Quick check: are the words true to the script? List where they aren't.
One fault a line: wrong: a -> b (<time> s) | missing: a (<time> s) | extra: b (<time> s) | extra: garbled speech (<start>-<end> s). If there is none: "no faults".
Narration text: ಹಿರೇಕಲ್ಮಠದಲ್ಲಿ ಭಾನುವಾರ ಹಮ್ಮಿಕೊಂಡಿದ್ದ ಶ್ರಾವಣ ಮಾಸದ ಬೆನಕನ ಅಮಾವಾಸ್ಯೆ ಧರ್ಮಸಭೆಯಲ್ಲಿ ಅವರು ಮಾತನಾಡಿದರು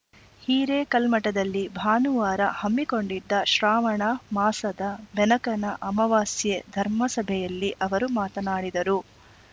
no faults